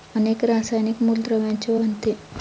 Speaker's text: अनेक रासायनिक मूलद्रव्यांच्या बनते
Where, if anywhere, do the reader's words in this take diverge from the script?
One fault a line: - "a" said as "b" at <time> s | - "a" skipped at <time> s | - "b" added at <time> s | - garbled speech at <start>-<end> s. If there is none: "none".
none